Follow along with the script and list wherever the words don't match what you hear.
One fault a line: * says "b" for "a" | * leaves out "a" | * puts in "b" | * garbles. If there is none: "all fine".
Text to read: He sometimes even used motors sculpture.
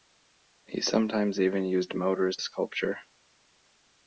all fine